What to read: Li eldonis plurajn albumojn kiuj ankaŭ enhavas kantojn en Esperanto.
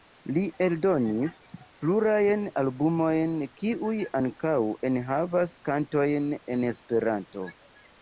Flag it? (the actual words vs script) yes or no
no